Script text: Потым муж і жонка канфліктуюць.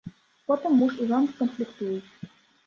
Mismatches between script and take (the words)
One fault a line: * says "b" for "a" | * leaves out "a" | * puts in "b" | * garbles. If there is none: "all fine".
all fine